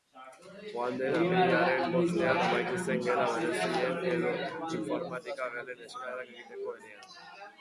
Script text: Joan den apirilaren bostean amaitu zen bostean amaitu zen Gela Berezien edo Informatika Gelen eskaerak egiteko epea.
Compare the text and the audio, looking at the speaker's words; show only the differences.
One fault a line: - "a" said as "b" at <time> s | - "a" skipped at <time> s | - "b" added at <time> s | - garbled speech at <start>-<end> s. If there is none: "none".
- "bostean amaitu zen" skipped at 3.0 s